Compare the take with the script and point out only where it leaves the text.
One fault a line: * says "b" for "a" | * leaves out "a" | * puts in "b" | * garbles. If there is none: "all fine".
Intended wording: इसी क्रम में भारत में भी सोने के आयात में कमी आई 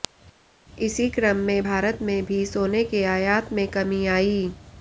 all fine